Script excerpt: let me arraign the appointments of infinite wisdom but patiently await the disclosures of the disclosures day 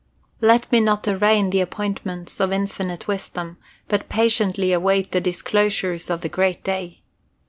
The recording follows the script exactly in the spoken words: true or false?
false